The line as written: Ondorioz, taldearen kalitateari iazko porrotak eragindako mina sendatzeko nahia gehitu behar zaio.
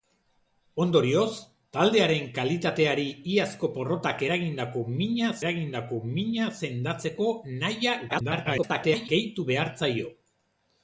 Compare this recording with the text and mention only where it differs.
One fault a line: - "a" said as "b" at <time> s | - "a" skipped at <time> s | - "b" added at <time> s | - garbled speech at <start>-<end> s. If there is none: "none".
- "eragindako mina" added at 5.4 s
- garbled speech at 8.1-9.1 s